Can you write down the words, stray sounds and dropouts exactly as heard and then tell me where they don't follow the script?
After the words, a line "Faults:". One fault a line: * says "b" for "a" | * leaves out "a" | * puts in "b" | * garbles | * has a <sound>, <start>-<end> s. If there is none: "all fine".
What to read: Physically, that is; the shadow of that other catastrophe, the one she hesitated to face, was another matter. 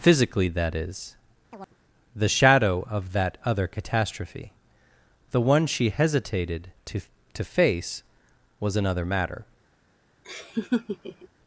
Physically, that is; the shadow of that other catastrophe, the one she hesitated to to face, was another matter.
Faults:
* has a chirp, 1.5-1.8 s
* puts in "to"
* has a laugh, 10.2-11.3 s